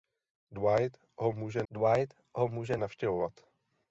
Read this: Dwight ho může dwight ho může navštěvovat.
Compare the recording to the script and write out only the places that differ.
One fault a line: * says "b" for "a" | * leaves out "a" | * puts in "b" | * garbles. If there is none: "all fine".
all fine